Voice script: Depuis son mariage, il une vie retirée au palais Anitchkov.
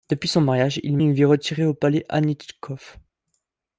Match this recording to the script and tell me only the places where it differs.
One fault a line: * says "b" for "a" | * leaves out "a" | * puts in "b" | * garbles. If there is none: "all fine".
all fine